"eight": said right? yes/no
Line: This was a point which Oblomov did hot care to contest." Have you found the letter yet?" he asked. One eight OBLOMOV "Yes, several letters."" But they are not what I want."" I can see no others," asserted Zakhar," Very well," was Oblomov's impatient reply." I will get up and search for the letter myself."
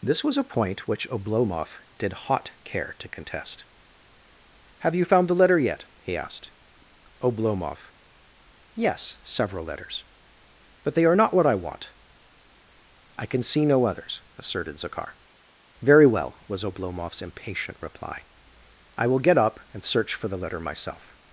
no